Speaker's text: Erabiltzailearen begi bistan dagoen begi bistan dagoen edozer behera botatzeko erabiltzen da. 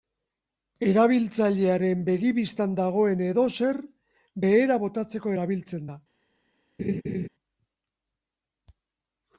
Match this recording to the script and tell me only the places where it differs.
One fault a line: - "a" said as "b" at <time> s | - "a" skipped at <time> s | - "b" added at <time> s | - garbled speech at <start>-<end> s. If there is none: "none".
- "begi bistan dagoen" skipped at 3.2 s